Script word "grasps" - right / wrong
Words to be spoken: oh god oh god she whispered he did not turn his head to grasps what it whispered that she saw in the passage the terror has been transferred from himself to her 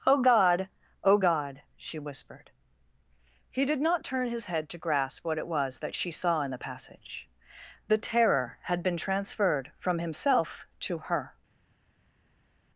wrong